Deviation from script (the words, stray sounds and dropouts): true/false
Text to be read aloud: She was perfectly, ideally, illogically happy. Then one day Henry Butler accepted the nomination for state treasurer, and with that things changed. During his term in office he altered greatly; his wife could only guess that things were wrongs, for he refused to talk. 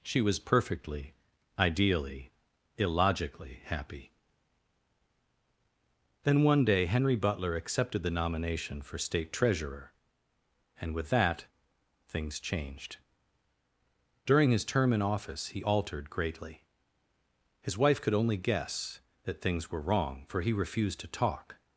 true